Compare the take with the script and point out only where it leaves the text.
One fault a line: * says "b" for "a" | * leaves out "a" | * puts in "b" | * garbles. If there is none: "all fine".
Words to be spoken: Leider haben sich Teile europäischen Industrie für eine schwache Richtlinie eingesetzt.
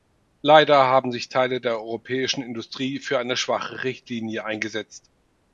* puts in "der"